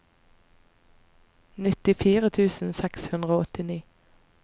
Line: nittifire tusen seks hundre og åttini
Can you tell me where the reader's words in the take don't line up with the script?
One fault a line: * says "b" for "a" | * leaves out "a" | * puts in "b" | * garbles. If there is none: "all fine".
all fine